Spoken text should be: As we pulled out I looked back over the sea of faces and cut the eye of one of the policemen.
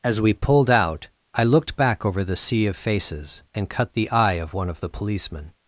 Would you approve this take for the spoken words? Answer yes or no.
yes